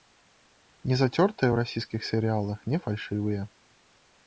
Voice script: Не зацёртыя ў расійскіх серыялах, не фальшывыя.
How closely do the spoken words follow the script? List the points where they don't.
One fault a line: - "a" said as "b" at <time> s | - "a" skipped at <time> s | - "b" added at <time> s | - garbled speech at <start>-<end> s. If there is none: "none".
none